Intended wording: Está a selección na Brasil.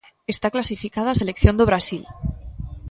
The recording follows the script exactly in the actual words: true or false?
false